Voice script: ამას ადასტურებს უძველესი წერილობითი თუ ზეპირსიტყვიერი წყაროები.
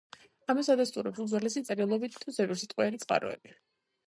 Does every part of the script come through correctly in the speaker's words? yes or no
yes